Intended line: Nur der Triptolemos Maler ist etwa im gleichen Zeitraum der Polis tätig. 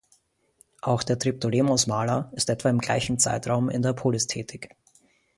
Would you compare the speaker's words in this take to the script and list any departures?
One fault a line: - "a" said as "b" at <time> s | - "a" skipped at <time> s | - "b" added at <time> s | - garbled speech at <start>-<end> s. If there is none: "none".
- "Nur" said as "Auch" at 0.8 s
- "in" added at 3.7 s